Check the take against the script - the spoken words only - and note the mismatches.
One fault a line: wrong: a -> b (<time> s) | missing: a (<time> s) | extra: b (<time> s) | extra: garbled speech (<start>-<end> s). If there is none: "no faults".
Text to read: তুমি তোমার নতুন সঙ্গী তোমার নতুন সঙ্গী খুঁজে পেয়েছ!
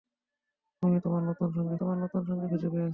no faults